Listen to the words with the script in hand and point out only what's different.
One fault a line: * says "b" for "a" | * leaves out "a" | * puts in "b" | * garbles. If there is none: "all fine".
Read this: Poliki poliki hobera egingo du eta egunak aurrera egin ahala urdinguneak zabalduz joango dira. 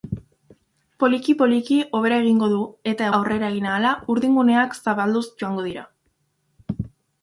* leaves out "egunak"